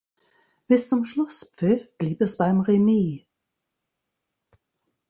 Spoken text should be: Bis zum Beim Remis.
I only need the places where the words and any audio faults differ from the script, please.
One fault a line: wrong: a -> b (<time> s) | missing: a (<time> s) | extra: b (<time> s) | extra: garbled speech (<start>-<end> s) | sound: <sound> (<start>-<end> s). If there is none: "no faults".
extra: Schlusspfiff blieb es (1.0 s)